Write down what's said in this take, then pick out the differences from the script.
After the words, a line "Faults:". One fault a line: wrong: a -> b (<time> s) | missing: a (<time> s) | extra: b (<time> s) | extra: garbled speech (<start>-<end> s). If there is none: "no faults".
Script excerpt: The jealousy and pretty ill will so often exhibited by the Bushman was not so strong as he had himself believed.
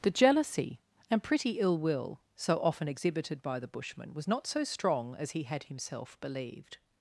The jealousy and pretty ill will so often exhibited by the Bushman was not so strong as he had himself believed.
Faults:
no faults